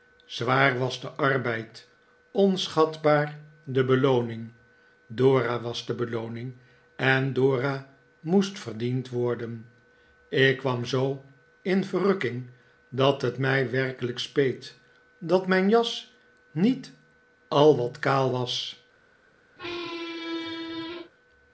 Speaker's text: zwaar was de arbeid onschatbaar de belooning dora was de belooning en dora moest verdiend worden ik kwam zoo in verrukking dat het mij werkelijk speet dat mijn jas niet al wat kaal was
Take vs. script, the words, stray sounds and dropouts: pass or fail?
fail